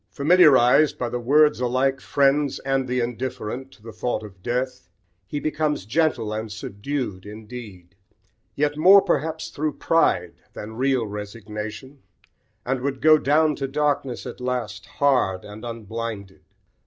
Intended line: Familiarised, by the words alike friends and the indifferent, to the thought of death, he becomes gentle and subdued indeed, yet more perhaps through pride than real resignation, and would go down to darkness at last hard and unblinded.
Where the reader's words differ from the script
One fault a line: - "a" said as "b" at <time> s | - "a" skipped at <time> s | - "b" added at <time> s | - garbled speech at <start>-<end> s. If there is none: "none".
none